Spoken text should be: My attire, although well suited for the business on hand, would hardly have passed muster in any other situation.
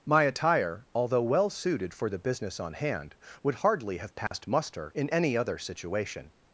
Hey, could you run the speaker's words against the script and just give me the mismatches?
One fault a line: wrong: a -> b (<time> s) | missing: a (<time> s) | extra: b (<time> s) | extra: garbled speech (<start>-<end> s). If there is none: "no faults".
no faults